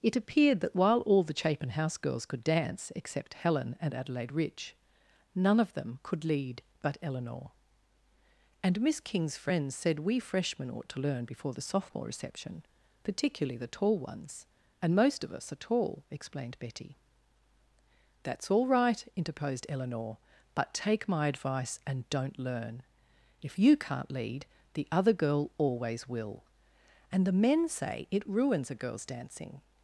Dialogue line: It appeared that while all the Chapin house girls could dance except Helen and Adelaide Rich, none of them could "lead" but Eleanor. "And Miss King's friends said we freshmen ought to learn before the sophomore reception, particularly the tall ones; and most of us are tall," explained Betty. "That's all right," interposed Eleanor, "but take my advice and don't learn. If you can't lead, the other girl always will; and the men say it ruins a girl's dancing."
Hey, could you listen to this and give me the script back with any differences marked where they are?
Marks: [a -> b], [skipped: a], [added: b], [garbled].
It appeared that while all the Chapin house girls could dance except Helen and Adelaide Rich, none of them could "lead" but Eleanor. "And Miss King's friends said we freshmen ought to learn before the sophomore reception, particularly the tall ones; and most of us are tall," explained Betty. "That's all right," interposed Eleanor, "but take my advice and don't learn. If you can't lead, the other girl always will; and the men say it ruins a girl's dancing."